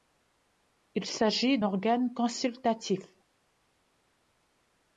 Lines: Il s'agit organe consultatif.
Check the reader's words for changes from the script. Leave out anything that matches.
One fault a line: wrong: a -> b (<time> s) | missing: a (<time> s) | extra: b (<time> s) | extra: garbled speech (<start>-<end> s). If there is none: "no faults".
no faults